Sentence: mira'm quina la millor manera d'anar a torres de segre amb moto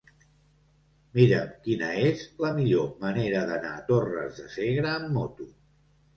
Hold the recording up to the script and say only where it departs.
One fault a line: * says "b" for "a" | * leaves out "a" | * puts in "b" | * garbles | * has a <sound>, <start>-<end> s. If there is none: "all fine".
* puts in "és"